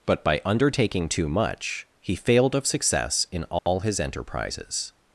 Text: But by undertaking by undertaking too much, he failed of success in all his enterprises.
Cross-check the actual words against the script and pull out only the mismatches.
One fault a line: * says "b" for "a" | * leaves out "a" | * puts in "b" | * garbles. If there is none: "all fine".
* leaves out "by undertaking"